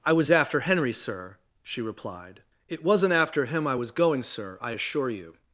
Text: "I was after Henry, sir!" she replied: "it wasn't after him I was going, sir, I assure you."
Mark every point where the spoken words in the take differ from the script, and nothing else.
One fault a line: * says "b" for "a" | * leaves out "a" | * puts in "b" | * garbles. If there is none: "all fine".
all fine